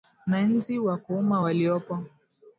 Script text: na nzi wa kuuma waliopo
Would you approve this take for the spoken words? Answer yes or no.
yes